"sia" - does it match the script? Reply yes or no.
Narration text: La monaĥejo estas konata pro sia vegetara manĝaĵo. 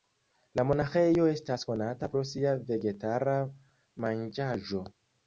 yes